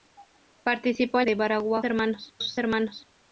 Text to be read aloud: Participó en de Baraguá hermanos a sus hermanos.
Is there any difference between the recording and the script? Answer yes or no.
no